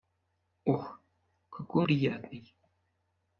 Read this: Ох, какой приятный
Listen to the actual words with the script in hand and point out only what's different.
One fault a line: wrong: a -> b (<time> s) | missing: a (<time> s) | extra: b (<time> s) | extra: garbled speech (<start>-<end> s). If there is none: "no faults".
no faults